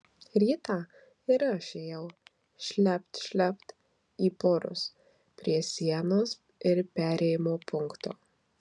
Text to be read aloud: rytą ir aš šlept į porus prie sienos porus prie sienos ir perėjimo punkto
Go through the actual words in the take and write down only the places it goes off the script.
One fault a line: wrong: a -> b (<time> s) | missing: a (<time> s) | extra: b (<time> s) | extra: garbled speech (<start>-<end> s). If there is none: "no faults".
extra: ėjau (1.8 s)
extra: šlept (3.2 s)
missing: porus prie sienos (6.3 s)